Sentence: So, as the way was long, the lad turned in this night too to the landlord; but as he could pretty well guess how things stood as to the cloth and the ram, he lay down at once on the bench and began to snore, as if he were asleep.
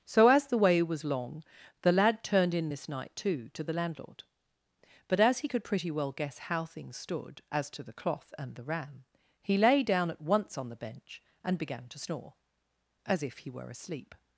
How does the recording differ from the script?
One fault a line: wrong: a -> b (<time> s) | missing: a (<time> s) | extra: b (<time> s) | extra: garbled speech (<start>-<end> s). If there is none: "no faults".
no faults